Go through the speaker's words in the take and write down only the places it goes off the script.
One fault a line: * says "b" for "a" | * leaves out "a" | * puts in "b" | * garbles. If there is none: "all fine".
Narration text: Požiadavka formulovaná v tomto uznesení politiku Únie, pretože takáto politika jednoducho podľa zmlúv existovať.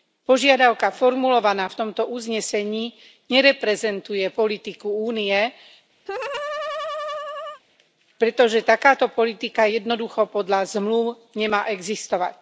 * puts in "nereprezentuje"
* puts in "nemá"